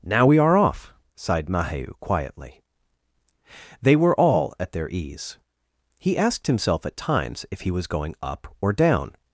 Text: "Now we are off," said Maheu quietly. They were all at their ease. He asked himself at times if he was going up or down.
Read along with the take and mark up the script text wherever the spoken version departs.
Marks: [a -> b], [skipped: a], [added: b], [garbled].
"Now we are off," [said -> sighed] Maheu quietly. They were all at their ease. He asked himself at times if he was going up or down.